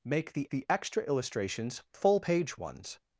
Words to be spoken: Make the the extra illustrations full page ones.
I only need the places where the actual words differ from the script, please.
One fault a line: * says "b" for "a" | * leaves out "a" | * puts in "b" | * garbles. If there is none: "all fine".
all fine